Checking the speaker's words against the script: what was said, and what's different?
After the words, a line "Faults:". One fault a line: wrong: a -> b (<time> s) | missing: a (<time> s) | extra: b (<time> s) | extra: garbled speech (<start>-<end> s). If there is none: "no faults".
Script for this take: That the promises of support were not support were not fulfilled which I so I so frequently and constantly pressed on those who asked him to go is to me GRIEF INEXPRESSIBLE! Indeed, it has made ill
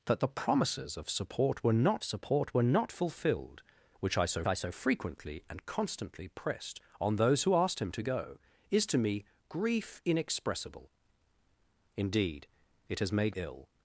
That the promises of support were not support were not fulfilled which I so I so frequently and constantly pressed on those who asked him to go is to me GRIEF INEXPRESSIBLE! Indeed, it has made ill
Faults:
no faults